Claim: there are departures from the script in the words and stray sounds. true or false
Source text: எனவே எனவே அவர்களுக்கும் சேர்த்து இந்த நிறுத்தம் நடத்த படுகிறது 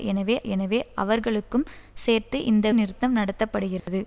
true